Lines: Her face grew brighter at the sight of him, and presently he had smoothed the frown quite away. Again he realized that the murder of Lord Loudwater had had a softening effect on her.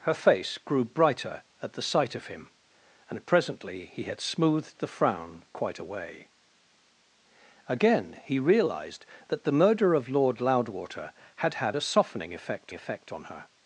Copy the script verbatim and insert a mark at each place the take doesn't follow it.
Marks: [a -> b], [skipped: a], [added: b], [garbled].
Her face grew brighter at the sight of him, and presently he had smoothed the frown quite away. Again he realized that the murder of Lord Loudwater had had a softening effect [added: effect] on her.